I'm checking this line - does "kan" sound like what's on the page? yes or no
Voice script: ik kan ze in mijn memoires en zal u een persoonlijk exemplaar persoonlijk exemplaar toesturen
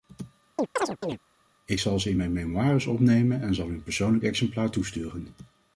no